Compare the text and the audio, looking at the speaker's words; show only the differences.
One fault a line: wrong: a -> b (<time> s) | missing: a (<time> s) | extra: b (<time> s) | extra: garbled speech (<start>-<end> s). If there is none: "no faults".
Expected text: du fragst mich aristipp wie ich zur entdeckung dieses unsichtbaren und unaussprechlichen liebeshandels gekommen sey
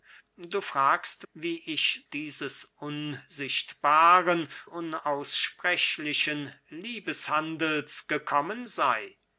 missing: mich aristipp (1.2 s)
missing: zur entdeckung (2.0 s)
missing: und (4.5 s)